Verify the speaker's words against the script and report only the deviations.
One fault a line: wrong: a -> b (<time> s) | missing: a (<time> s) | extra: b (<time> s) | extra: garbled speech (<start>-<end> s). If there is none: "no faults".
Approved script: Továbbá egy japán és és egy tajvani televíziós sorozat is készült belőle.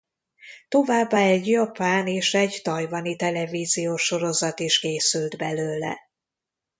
missing: és (2.3 s)